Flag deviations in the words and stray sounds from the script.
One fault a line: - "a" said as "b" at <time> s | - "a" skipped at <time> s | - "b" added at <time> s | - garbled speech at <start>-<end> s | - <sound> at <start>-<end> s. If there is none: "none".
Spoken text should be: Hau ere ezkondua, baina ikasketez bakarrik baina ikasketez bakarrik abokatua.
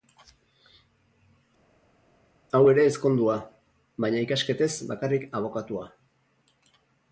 - "baina ikasketez bakarrik" skipped at 5.3 s